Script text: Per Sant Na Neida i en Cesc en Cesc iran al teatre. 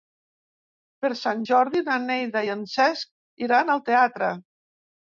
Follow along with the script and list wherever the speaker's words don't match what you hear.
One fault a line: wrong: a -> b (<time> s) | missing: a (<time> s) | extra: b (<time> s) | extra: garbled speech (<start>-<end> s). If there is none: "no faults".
extra: Jordi (1.5 s)
missing: en Cesc (3.4 s)